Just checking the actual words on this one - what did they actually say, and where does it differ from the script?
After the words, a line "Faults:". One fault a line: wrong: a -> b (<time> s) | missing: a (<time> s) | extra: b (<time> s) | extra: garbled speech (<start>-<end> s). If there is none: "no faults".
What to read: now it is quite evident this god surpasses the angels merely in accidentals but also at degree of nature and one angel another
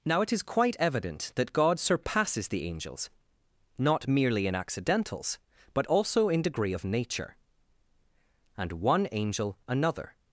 now it is quite evident that god surpasses the angels not merely in accidentals but also in degree of nature and one angel another
Faults:
wrong: this -> that (1.4 s)
extra: not (3.8 s)
wrong: at -> in (6.3 s)